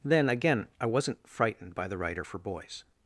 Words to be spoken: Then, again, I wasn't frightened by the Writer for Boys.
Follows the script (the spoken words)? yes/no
yes